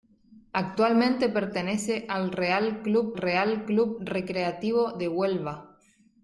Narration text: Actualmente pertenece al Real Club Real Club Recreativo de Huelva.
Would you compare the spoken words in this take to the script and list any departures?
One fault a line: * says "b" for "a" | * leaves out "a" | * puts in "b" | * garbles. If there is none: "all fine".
all fine